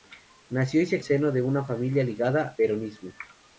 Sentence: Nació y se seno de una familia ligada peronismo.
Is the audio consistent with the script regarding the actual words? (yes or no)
yes